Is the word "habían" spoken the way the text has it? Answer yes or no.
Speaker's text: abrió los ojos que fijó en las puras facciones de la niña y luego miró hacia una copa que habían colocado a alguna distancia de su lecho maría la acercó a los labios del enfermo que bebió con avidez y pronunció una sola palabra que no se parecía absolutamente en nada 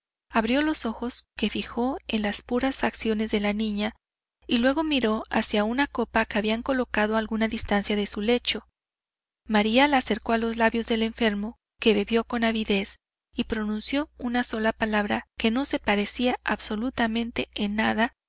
yes